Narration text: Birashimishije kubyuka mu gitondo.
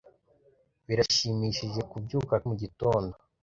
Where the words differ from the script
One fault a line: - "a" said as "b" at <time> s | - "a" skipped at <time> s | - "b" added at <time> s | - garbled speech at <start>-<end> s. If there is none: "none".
none